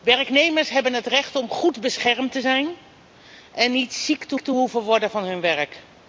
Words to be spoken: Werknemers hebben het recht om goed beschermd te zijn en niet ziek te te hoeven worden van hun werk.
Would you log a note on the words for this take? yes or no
no